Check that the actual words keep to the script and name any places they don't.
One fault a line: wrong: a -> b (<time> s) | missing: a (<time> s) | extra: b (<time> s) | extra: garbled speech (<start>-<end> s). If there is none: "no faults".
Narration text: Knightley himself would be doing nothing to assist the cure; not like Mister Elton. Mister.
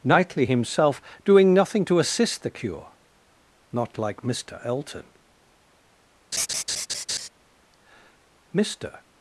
missing: would be (1.0 s)